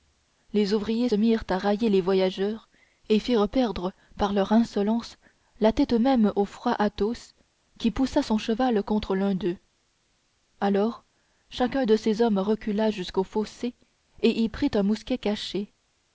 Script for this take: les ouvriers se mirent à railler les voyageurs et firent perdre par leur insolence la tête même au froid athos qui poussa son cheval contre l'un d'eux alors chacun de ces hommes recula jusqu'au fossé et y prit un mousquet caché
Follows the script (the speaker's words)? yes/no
no